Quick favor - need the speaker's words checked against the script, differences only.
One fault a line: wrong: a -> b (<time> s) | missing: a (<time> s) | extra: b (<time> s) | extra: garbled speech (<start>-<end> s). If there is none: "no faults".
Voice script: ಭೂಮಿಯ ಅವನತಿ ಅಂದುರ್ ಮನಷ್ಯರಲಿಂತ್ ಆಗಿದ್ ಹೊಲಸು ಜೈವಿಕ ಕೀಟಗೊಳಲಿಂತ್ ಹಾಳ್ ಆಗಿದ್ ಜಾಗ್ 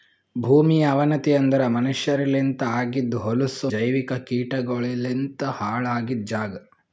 no faults